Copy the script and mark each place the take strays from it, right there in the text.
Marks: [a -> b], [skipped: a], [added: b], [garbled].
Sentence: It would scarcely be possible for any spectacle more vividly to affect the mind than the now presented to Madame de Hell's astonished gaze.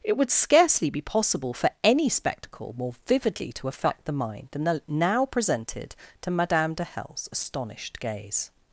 It would scarcely be possible for any spectacle more vividly to affect the mind than the now presented to Madame de Hell's astonished gaze.